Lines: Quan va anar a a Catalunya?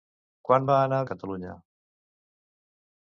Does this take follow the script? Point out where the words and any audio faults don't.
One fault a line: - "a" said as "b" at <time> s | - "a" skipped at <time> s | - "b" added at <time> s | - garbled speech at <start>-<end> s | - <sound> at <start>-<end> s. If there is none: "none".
none